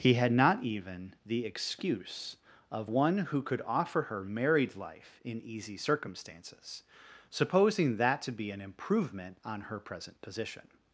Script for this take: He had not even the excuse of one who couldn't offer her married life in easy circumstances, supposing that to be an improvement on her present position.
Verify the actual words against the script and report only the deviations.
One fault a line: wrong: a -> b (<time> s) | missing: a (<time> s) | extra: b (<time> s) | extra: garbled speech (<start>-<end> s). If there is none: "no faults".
wrong: couldn't -> could (3.4 s)